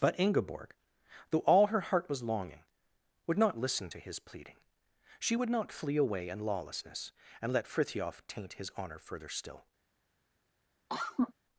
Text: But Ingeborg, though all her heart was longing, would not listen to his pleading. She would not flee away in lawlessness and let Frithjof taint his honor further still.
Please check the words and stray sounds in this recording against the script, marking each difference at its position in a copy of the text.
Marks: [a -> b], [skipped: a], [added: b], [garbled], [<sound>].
But Ingeborg, though all her heart was longing, would not listen to his pleading. She would not flee away in lawlessness and let Frithjof taint his honor further still. [cough]